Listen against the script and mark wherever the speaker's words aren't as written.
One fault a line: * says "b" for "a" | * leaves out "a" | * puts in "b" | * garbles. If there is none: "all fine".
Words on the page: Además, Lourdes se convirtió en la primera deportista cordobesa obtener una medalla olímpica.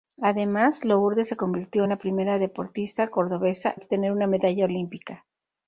all fine